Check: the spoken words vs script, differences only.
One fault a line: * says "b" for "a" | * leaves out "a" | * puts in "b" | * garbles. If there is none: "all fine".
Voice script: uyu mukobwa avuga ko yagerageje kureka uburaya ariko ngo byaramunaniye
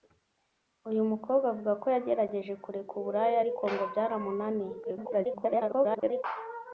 * garbles